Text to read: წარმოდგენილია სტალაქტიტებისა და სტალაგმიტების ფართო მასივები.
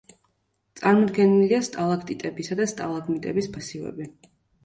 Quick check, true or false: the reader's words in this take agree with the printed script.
false